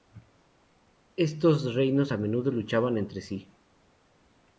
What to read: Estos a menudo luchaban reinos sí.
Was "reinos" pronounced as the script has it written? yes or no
no